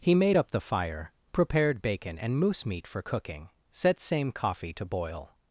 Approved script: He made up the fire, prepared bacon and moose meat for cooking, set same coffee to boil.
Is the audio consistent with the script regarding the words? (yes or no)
yes